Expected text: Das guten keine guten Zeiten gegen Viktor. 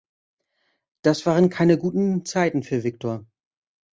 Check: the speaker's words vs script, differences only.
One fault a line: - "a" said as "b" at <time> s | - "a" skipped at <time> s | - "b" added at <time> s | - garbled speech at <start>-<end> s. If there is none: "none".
- "guten" said as "waren" at 1.3 s
- "gegen" said as "für" at 2.6 s